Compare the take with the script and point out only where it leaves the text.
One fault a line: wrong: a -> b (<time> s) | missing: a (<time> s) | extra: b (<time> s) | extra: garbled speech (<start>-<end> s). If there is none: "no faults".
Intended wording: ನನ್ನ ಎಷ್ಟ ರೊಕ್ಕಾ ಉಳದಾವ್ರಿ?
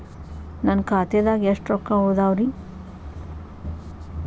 extra: ಖಾತೆದಾಗ (0.9 s)